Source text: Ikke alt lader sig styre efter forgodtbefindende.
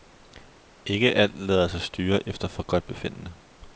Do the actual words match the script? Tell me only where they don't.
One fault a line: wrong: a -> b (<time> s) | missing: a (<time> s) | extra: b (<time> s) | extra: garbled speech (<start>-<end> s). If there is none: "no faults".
no faults